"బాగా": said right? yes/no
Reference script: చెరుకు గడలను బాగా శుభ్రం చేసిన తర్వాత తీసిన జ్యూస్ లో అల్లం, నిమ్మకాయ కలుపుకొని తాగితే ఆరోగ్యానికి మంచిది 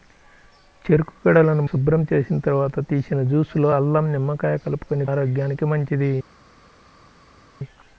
no